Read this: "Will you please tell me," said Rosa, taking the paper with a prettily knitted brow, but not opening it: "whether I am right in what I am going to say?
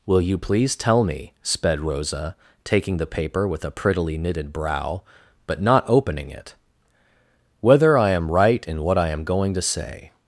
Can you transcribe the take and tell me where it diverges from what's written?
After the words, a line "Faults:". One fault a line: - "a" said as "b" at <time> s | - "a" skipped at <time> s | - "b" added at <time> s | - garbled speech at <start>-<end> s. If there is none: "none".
"Will you please tell me," sped Rosa, taking the paper with a prettily knitted brow, but not opening it: "whether I am right in what I am going to say?
Faults:
- "said" said as "sped" at 1.4 s